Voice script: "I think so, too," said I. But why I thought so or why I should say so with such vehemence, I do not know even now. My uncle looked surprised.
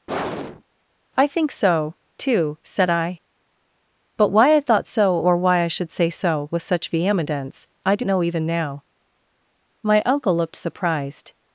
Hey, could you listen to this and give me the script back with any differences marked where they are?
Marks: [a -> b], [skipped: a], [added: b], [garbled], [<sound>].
[sigh] "I think so, too," said I. But why I thought so or why I should say so with such vehemence, I do [skipped: not] know even now. My uncle looked surprised.